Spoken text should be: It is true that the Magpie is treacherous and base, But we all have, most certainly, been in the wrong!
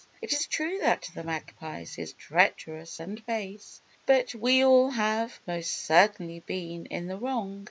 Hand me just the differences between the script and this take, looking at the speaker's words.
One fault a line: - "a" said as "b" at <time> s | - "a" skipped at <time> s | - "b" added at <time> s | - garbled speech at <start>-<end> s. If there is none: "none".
none